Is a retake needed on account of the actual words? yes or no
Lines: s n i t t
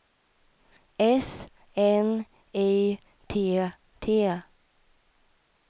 no